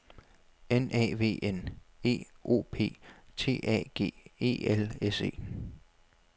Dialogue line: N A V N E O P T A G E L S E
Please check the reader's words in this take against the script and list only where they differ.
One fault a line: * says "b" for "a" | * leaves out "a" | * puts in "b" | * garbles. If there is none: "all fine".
all fine